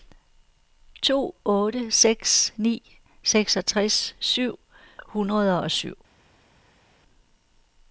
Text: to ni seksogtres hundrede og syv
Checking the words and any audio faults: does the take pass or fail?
fail